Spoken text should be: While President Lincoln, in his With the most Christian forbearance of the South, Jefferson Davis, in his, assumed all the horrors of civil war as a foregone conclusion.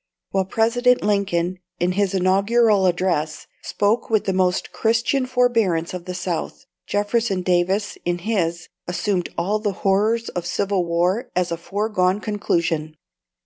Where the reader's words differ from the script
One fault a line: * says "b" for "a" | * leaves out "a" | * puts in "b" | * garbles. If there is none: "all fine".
* puts in "Inaugural Address spoke"